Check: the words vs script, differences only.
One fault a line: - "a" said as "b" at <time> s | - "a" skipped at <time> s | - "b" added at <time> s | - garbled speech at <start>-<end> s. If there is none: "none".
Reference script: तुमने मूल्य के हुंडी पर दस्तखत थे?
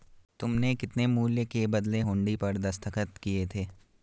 - "कितने" added at 0.8 s
- "बदले" added at 1.7 s
- "किए" added at 3.2 s